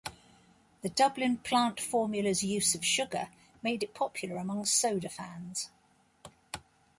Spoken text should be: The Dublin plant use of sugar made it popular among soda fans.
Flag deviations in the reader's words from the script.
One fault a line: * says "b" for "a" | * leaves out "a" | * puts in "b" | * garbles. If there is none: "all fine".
* puts in "formula's"